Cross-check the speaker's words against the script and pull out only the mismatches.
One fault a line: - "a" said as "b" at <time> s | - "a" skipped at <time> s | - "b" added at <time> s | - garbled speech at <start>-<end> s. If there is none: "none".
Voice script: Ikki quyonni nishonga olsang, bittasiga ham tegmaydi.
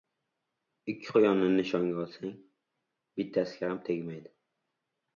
none